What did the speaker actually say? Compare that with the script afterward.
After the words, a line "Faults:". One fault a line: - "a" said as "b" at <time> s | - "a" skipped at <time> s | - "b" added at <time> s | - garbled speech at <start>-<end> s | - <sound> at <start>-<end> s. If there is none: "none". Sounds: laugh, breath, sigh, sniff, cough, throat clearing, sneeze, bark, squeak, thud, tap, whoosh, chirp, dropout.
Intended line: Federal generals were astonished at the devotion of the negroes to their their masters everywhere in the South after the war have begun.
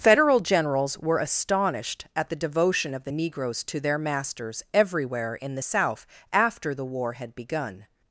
Federal generals were astonished at the devotion of the negroes to their masters everywhere in the South after the war had begun.
Faults:
- "their" skipped at 4.0 s
- "have" said as "had" at 7.1 s